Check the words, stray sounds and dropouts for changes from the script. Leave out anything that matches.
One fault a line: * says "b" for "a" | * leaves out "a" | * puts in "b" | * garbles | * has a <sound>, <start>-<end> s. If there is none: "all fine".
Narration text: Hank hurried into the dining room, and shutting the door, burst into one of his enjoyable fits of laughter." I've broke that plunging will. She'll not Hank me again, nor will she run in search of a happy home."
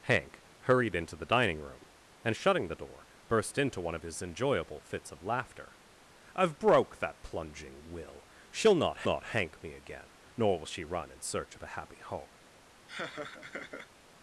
* puts in "not"
* has a laugh, 12.9-13.9 s